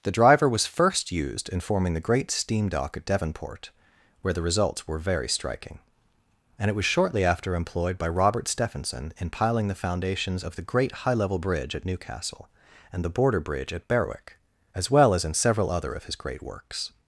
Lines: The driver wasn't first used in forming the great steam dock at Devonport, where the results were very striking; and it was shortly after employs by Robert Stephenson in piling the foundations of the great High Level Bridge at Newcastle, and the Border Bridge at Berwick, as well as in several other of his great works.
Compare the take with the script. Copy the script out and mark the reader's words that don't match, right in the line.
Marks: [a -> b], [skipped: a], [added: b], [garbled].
The driver [wasn't -> was] first used in forming the great steam dock at Devonport, where the results were very striking; and it was shortly after [employs -> employed] by Robert Stephenson in piling the foundations of the great High Level Bridge at Newcastle, and the Border Bridge at Berwick, as well as in several other of his great works.